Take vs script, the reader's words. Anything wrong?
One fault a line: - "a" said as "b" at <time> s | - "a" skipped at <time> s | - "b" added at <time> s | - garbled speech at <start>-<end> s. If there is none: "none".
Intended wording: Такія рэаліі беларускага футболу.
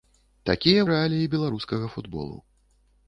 none